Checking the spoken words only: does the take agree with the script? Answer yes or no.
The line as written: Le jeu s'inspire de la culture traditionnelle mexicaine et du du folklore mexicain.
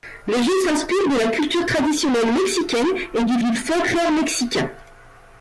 yes